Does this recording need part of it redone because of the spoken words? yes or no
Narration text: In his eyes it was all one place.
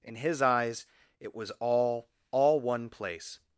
yes